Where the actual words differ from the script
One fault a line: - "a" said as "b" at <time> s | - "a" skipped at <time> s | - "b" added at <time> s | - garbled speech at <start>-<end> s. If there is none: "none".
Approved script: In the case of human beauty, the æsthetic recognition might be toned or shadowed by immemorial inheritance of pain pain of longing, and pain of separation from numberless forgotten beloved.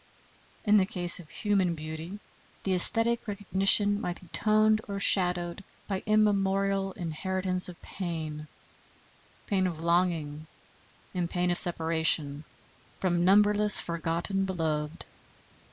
none